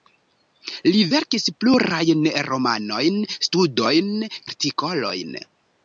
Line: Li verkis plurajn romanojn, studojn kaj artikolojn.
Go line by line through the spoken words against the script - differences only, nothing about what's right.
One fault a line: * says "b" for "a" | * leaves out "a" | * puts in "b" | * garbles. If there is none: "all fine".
* leaves out "kaj"